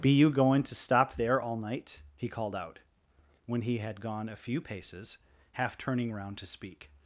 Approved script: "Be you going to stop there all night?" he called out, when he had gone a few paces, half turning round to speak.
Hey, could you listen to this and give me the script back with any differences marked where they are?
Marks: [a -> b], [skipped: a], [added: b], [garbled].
"Be you going to stop there all night?" he called out, when he had gone a few paces, half turning round to speak.